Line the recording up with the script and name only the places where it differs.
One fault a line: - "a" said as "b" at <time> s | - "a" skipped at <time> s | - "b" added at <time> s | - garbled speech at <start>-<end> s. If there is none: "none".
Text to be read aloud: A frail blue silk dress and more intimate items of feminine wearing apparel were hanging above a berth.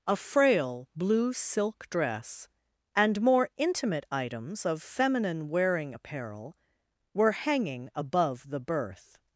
- "a" said as "the" at 8.5 s